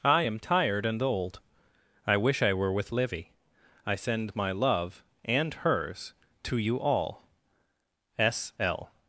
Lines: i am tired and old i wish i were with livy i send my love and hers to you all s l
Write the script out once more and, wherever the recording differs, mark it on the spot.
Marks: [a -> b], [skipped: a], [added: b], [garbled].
i am tired and old i wish i were with livy i send my love and hers to you all s l